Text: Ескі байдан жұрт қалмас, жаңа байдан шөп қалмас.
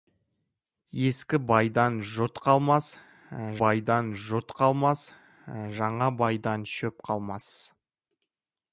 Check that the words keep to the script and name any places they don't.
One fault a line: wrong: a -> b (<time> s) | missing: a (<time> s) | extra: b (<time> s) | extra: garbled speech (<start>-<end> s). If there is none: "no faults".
extra: байдан жұрт қалмас (3.6 s)